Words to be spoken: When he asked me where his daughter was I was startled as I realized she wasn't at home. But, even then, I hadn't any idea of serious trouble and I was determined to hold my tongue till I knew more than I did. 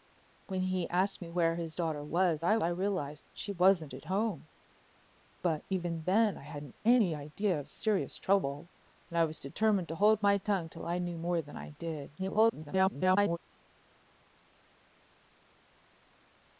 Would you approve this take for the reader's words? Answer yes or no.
no